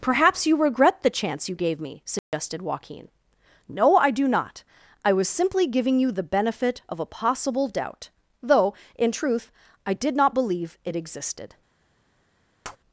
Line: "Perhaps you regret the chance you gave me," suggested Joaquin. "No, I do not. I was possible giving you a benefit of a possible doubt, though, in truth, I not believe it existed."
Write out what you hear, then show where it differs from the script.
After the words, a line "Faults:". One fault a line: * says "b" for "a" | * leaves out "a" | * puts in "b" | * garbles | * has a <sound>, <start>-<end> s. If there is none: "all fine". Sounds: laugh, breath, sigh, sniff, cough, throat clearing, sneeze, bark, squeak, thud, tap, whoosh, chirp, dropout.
"Perhaps you regret the chance you gave me," suggested Joaquin. "No, I do not. I was simply giving you the benefit of a possible doubt, though, in truth, I did not believe it existed."
Faults:
* has a dropout, 2.2-2.3 s
* says "simply" for "possible"
* says "the" for "a"
* puts in "did"
* has a tap, 12.6-12.8 s